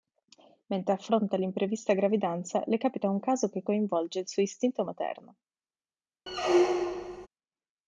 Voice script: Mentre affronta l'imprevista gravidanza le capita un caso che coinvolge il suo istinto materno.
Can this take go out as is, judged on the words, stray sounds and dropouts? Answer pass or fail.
fail